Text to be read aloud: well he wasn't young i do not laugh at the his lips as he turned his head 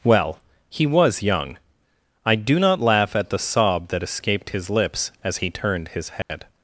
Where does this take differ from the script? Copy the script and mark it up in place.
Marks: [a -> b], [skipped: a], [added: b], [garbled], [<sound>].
well he [wasn't -> was] young i do not laugh at the [added: sob that escaped] his lips as he turned his head [dropout]